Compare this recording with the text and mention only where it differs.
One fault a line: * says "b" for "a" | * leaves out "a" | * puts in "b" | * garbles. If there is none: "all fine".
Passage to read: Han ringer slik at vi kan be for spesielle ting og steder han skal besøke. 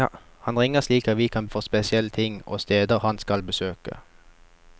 * leaves out "be"